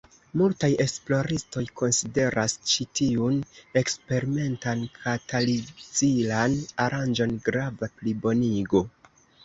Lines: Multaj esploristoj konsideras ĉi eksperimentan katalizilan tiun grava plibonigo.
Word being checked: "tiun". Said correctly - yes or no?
no